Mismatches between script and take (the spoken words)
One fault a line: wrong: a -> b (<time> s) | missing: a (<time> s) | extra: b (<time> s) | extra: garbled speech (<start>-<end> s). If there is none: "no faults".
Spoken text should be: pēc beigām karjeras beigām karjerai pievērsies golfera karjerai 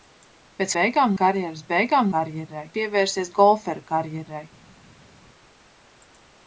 no faults